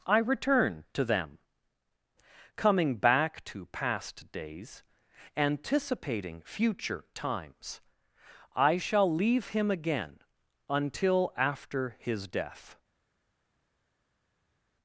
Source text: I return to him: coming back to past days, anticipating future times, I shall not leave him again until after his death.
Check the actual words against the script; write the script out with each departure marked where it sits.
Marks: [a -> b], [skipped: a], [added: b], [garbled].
I return to [him: -> them] coming back to past days, anticipating future times, I shall [skipped: not] leave him again until after his death.